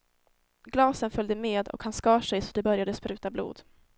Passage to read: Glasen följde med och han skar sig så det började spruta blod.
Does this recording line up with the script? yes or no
yes